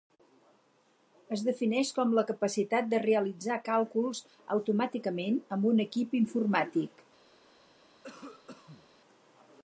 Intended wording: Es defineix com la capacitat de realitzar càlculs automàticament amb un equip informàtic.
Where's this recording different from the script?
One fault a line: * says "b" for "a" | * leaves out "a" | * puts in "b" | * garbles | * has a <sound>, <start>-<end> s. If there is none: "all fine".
* has a cough, 8.0-8.9 s